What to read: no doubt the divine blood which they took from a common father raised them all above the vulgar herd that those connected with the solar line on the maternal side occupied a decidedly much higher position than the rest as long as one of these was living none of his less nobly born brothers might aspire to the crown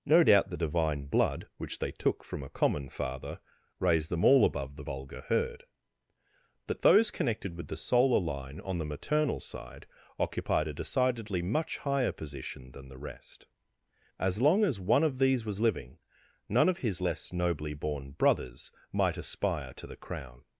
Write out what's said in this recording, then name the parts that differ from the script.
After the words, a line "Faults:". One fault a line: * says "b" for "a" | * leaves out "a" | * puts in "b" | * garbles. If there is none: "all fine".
no doubt the divine blood which they took from a common father raised them all above the vulgar herd that those connected with the solar line on the maternal side occupied a decidedly much higher position than the rest as long as one of these was living none of his less nobly born brothers might aspire to the crown
Faults:
all fine